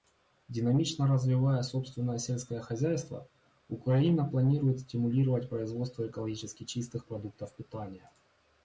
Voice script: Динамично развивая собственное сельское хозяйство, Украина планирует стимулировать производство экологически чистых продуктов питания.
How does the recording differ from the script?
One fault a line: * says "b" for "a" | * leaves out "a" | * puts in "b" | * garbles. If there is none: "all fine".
all fine